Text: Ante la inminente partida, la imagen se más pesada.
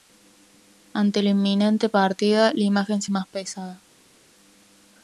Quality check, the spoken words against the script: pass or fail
pass